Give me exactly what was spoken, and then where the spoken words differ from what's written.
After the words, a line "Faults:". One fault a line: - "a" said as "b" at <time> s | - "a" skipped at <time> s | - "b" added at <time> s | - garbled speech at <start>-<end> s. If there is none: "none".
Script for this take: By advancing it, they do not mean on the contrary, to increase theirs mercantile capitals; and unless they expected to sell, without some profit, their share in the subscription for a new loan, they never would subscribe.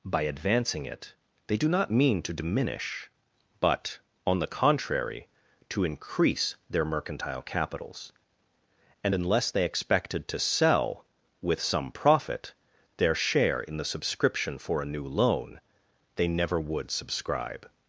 By advancing it, they do not mean to diminish, but, on the contrary, to increase their mercantile capitals; and unless they expected to sell, with some profit, their share in the subscription for a new loan, they never would subscribe.
Faults:
- "to diminish but" added at 2.2 s
- "theirs" said as "their" at 6.7 s
- "without" said as "with" at 11.4 s